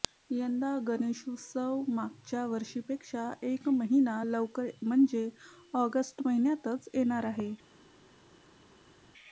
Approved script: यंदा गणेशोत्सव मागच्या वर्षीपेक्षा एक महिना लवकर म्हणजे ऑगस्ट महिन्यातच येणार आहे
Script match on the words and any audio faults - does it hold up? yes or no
yes